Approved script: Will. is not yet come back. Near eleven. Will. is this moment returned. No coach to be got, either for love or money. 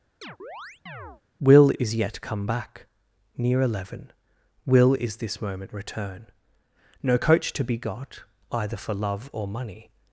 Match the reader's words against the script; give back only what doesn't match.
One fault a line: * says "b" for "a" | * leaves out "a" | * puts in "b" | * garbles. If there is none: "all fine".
* leaves out "not"
* says "return" for "returned"